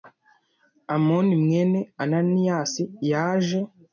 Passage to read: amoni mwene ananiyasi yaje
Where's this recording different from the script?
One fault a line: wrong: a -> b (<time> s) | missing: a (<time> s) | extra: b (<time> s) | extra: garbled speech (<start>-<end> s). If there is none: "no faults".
no faults